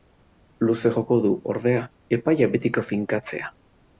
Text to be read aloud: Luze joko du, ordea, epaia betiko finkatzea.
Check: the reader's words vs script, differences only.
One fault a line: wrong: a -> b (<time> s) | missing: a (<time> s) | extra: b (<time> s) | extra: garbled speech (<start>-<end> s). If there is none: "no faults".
no faults